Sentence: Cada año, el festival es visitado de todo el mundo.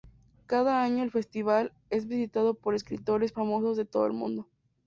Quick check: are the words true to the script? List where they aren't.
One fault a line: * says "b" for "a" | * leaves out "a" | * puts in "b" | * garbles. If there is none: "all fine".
* puts in "por escritores famosos"